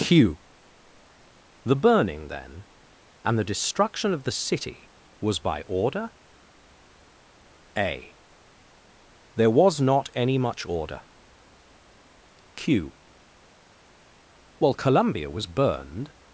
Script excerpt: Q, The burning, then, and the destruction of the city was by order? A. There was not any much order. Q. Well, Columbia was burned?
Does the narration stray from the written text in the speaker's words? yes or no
no